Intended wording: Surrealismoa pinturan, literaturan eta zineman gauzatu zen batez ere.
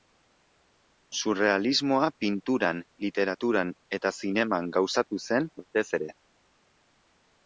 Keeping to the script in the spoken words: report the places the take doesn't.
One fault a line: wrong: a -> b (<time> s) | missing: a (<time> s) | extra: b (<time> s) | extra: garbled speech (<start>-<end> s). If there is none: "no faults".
no faults